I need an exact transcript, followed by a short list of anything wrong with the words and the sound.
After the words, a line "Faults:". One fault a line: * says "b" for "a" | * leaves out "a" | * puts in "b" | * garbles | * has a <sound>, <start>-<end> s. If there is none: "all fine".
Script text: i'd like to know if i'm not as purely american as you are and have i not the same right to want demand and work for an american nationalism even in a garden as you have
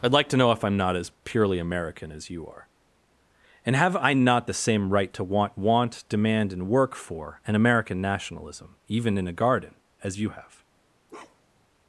i'd like to know if i'm not as purely american as you are and have i not the same right to want want demand and work for an american nationalism even in a garden as you have
Faults:
* puts in "want"
* has a bark, 11.1-11.7 s